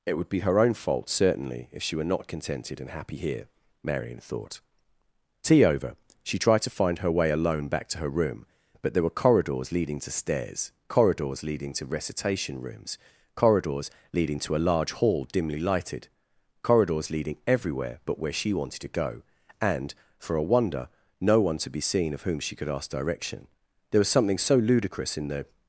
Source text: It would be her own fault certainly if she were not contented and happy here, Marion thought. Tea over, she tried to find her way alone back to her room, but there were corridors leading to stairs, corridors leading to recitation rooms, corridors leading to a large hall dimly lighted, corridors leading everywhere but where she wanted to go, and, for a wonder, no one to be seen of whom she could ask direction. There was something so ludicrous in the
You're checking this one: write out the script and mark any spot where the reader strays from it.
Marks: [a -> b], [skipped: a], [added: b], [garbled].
It would be her own fault certainly if she were not contented and happy here, Marion thought. Tea over, she tried to find her way alone back to her room, but there were corridors leading to stairs, corridors leading to recitation rooms, corridors leading to a large hall dimly lighted, corridors leading everywhere but where she wanted to go, and, for a wonder, no one to be seen of whom she could ask direction. There was something so ludicrous in the